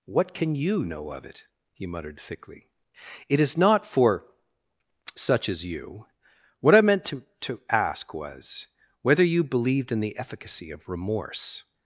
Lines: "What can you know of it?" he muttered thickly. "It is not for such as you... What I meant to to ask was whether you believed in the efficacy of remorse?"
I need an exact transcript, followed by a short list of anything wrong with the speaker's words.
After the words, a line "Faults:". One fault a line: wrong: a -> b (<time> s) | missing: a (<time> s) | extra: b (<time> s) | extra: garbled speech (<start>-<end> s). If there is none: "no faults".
"What can you know of it?" he muttered thickly. "It is not for such as you... What I meant to to ask was whether you believed in the efficacy of remorse?"
Faults:
no faults